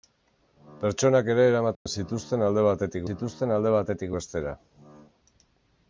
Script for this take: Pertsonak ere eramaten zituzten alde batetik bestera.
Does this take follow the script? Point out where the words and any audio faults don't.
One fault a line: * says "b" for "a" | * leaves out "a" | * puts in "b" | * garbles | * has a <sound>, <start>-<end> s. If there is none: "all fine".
* has a dropout, 1.7-1.9 s
* puts in "zituzten alde batetik"